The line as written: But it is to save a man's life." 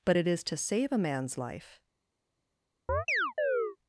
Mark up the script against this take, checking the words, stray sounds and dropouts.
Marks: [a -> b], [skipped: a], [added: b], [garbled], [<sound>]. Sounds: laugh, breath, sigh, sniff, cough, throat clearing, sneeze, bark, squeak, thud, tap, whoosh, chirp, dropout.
But it is to save a man's life." [chirp]